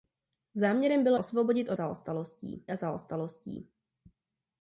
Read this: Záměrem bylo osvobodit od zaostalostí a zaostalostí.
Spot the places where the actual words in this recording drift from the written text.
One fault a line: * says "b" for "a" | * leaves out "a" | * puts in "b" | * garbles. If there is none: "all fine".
all fine